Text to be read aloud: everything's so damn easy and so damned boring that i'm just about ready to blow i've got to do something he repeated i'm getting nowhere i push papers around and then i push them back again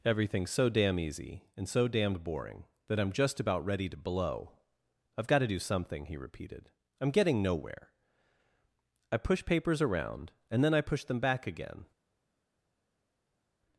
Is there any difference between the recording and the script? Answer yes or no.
no